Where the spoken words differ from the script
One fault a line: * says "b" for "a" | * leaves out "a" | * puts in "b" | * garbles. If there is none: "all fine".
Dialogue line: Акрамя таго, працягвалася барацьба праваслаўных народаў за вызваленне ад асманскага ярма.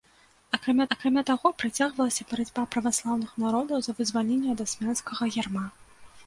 * puts in "акрамя"